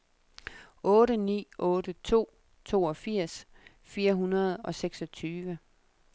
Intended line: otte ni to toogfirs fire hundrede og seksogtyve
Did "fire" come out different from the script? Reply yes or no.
no